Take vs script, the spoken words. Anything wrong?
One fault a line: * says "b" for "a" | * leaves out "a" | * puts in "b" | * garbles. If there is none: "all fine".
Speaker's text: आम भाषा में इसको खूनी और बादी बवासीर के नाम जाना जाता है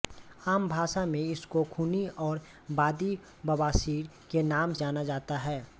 all fine